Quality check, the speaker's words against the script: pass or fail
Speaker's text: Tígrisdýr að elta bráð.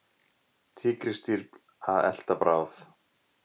pass